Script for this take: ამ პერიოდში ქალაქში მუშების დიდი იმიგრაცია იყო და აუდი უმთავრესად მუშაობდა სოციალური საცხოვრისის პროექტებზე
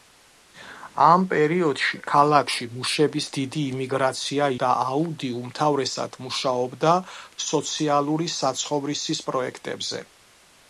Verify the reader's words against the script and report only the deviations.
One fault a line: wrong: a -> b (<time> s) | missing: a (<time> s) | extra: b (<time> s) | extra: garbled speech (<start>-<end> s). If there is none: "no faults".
missing: იყო (4.5 s)